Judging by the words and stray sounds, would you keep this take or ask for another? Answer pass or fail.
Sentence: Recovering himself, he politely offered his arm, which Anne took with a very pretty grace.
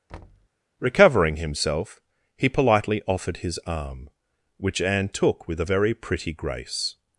fail